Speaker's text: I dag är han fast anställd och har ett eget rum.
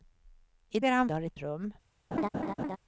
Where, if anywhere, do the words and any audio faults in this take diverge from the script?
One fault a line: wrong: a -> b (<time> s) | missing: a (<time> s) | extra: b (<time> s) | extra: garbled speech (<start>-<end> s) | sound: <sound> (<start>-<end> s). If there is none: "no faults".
missing: dag (0.8 s)
missing: fast anställd (1.1 s)
missing: eget (1.4 s)
sound: laugh (2.1-2.8 s)